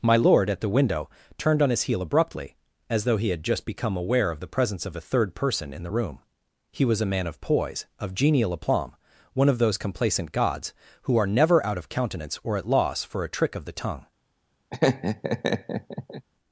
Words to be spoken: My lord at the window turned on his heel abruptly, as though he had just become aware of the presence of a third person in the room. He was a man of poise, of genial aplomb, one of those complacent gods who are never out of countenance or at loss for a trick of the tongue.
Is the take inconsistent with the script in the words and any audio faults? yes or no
yes